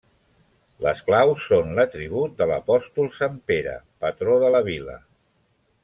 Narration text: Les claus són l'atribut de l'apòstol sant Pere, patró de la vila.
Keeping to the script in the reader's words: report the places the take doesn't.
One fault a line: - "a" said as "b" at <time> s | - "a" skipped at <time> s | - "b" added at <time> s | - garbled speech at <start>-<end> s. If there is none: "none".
none